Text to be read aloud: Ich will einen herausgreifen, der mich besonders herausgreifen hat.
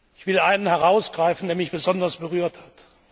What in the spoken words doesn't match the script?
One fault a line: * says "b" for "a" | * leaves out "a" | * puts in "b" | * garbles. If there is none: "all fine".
* says "berührt" for "herausgreifen"